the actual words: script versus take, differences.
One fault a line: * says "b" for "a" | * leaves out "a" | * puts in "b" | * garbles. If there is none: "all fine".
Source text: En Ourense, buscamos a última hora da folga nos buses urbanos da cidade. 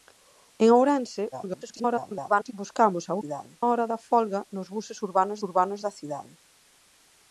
* garbles
* says "cidade" for "última"
* puts in "urbanos"